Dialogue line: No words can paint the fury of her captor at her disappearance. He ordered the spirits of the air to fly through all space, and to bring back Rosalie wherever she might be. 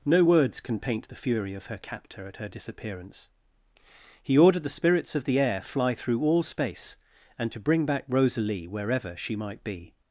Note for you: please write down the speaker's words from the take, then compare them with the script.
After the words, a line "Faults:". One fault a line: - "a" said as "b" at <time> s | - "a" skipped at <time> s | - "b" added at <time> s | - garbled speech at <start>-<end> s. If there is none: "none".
No words can paint the fury of her captor at her disappearance. He ordered the spirits of the air fly through all space, and to bring back Rosalie wherever she might be.
Faults:
- "to" skipped at 5.6 s